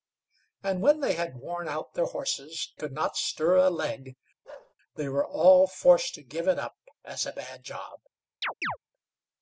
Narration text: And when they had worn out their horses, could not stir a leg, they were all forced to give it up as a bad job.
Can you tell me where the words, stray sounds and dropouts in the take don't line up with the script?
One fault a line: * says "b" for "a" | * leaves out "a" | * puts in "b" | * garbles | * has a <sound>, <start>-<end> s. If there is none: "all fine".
* has a bark, 4.4-4.7 s
* has a chirp, 8.4-8.8 s